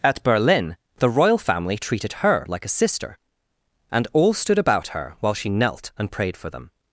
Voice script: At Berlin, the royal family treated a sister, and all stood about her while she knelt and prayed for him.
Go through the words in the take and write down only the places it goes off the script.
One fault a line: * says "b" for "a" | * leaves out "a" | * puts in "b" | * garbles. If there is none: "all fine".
* puts in "her like"
* says "them" for "him"